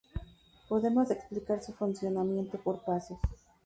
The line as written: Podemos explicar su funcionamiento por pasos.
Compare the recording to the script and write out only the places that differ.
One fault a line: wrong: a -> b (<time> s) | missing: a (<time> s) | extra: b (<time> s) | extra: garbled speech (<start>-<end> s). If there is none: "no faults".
no faults